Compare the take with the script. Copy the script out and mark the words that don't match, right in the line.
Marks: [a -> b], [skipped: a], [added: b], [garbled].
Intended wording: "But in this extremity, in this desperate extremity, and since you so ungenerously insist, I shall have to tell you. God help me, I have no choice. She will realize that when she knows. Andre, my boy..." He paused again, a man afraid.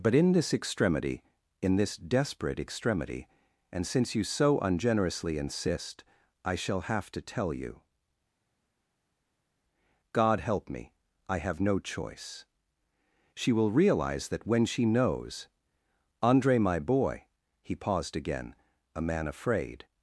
"But in this extremity, in this desperate extremity, and since you so ungenerously insist, I shall have to tell you. God help me, I have no choice. She will realize that when she knows. Andre, my boy..." He paused again, a man afraid.